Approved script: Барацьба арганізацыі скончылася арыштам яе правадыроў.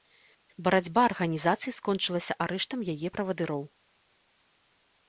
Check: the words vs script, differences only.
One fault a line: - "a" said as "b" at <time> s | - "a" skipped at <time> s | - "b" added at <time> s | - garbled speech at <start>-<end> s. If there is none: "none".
none